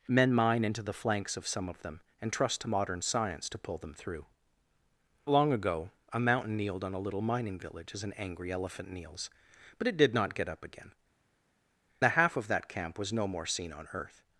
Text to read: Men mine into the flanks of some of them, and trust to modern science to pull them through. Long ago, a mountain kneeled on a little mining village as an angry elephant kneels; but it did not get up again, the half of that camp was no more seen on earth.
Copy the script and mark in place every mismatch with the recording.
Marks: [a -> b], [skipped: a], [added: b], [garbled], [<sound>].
Men mine into the flanks of some of them, and trust to modern science to pull them through. Long ago, a mountain kneeled on a little mining village as an angry elephant kneels; but it did not get up again, the half of that camp was no more seen on earth.